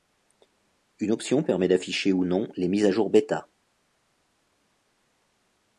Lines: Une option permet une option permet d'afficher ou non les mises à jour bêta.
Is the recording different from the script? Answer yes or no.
yes